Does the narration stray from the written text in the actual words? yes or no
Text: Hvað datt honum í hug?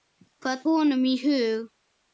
yes